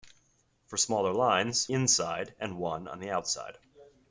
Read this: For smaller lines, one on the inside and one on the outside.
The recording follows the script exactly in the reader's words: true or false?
false